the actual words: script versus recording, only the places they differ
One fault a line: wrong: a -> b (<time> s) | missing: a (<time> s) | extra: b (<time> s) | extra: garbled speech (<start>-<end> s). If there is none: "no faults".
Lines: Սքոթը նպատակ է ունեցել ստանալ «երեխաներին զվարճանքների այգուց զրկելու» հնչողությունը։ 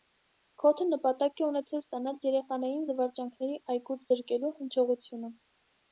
no faults